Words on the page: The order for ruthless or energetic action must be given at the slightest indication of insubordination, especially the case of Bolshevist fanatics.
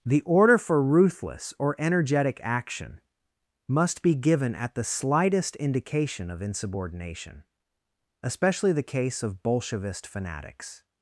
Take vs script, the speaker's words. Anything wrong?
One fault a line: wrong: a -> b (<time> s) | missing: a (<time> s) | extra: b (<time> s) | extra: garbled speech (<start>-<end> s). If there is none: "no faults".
no faults